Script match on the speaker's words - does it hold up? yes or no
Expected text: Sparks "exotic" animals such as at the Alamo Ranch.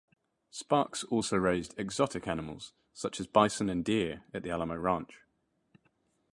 no